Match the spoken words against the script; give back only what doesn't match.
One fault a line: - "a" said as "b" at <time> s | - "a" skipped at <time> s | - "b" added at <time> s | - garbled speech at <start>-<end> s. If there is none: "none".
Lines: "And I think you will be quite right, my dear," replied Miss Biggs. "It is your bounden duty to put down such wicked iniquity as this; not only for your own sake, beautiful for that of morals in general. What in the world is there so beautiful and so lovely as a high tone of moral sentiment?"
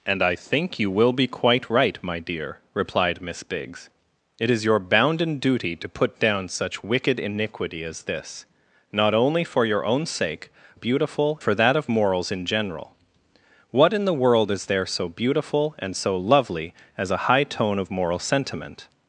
none